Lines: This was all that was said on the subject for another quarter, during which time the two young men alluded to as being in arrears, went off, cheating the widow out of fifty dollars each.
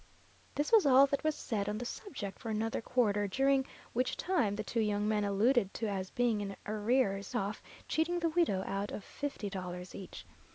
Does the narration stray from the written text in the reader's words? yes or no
yes